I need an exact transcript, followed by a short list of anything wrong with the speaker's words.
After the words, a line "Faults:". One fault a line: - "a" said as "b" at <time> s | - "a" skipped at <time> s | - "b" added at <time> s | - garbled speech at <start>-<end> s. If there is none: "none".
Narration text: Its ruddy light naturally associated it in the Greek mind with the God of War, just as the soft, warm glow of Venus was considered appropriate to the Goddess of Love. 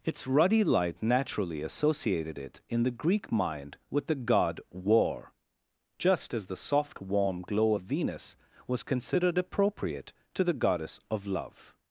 Its ruddy light naturally associated it in the Greek mind with the God War, just as the soft, warm glow of Venus was considered appropriate to the Goddess of Love.
Faults:
- "of" skipped at 4.6 s